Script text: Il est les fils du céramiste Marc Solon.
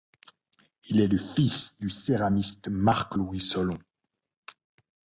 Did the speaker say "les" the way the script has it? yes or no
no